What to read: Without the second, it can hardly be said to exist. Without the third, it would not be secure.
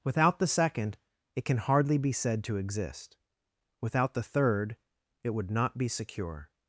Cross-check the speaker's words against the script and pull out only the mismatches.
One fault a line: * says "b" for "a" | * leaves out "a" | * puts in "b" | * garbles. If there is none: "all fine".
all fine